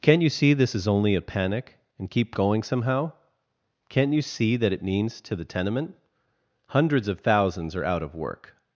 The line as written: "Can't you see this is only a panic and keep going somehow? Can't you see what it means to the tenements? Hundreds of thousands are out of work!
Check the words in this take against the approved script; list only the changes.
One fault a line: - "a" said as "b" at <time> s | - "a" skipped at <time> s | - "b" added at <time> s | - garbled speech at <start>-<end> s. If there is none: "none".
- "what" said as "that" at 4.6 s
- "tenements" said as "tenement" at 5.5 s